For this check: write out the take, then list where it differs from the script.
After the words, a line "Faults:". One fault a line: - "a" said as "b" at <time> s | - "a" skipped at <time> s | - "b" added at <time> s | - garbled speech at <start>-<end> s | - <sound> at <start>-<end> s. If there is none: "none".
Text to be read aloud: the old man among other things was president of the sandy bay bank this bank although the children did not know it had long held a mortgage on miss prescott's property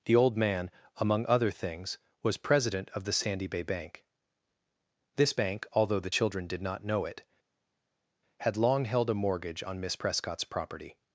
the old man among other things was president of the sandy bay bank this bank although the children did not know it had long held a mortgage on miss prescott's property
Faults:
none